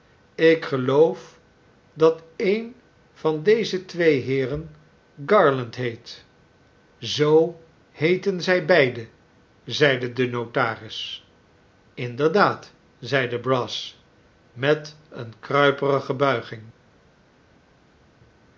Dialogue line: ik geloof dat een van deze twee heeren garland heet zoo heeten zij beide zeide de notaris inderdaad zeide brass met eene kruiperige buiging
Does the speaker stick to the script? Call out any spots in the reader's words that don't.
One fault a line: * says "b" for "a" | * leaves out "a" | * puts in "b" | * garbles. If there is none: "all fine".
all fine